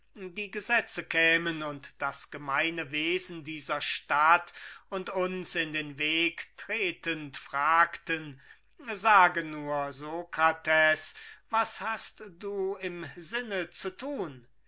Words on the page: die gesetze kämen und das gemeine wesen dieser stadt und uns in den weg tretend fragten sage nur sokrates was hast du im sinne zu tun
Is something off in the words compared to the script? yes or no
no